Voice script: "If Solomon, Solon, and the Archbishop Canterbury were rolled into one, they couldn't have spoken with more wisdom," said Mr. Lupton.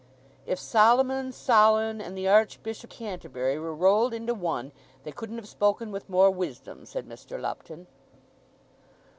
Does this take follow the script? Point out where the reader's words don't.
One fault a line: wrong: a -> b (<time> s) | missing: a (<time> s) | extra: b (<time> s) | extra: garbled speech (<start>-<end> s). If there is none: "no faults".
no faults